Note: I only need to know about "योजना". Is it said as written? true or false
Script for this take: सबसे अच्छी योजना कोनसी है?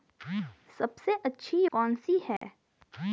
false